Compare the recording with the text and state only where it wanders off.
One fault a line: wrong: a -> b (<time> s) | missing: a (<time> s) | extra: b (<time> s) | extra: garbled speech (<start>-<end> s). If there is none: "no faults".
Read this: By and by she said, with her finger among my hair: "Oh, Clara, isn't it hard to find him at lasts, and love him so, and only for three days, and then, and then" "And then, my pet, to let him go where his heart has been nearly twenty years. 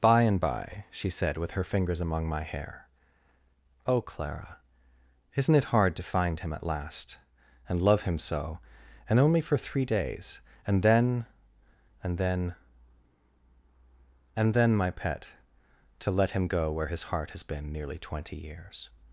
wrong: finger -> fingers (1.6 s)
wrong: lasts -> last (6.7 s)